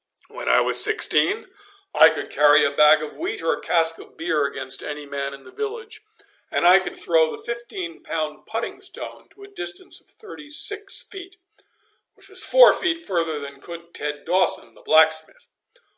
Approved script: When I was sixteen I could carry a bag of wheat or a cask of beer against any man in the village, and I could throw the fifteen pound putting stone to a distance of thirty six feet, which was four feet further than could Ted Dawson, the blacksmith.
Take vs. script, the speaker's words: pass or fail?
pass